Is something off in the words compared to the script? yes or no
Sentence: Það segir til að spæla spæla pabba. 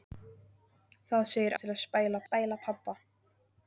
no